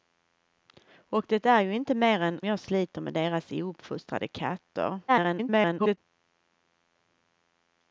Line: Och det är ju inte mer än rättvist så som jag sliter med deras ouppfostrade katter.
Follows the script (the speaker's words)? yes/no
no